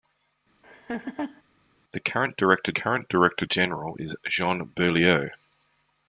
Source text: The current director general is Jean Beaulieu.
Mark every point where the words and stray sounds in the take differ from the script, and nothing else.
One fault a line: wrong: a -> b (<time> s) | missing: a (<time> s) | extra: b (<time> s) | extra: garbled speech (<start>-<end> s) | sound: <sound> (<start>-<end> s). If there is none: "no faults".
sound: laugh (0.6-1.4 s)
extra: current director (2.7 s)